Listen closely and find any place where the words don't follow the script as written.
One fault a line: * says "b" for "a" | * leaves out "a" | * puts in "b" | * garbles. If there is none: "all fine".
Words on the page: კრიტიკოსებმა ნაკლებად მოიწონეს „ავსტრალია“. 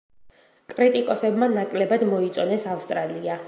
all fine